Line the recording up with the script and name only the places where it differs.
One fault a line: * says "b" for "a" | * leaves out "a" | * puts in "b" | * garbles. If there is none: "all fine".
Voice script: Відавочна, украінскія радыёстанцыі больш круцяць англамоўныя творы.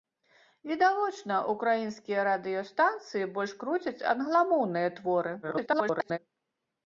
* garbles